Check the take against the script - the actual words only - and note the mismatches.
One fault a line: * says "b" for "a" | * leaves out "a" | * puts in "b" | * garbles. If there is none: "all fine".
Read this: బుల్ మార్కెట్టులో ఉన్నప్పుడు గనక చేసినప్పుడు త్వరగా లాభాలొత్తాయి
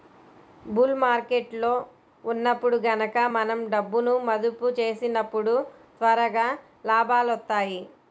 * puts in "మనం డబ్బును మదుపు"